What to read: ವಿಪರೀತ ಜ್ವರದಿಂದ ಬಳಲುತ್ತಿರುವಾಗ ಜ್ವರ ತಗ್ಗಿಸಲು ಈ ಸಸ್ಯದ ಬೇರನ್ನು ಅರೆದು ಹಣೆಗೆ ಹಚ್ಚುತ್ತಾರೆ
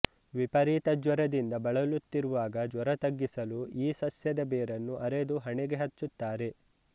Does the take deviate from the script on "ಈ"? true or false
false